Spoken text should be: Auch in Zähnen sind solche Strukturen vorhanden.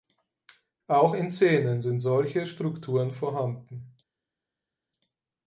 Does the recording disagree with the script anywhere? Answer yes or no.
no